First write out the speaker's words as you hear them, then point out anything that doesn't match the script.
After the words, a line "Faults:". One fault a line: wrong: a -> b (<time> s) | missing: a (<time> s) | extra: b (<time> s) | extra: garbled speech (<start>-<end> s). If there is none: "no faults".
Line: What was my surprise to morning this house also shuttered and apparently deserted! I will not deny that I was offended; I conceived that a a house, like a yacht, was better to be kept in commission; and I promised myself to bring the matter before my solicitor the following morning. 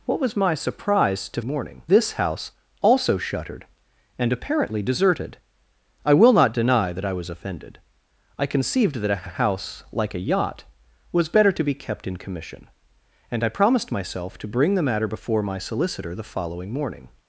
What was my surprise to morning this house also shuttered and apparently deserted! I will not deny that I was offended; I conceived that a a house, like a yacht, was better to be kept in commission; and I promised myself to bring the matter before my solicitor the following morning.
Faults:
no faults